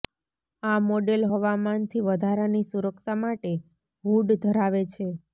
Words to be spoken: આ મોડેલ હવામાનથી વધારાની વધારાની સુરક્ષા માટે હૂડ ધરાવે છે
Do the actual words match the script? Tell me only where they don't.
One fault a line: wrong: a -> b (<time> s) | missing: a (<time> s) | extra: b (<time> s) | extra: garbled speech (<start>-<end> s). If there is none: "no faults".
missing: વધારાની (2.6 s)